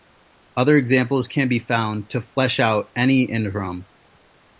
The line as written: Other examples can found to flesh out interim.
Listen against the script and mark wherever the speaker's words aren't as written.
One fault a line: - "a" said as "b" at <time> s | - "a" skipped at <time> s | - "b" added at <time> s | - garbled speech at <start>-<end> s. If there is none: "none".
- "be" added at 1.5 s
- "any" added at 3.0 s